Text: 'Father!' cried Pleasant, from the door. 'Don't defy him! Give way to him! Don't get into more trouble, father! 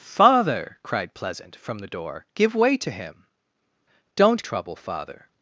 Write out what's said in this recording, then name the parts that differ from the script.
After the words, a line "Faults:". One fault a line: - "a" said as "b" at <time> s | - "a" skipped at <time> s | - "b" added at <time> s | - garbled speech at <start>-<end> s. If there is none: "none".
'Father!' cried Pleasant, from the door! 'Give way to him! Don't trouble, father!
Faults:
- "Don't defy him" skipped at 2.2 s
- "get into more" skipped at 4.4 s